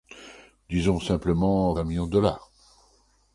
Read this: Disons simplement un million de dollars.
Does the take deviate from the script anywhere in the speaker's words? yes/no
no